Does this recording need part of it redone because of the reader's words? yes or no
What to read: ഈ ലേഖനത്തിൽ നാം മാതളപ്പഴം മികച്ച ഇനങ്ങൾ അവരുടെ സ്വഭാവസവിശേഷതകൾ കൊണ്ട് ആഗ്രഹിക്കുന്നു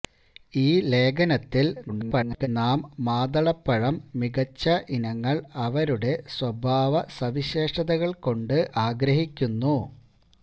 yes